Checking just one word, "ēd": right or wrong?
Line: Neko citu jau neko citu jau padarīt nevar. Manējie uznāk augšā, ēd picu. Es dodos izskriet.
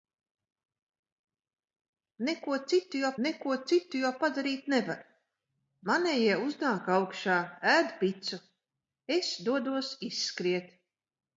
right